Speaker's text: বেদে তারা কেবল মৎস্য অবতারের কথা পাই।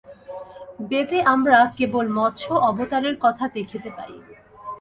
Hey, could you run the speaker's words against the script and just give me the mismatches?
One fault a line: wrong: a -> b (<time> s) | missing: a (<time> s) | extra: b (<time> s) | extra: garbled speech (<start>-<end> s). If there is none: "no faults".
wrong: তারা -> আমরা (1.3 s)
extra: দেখিতে (3.5 s)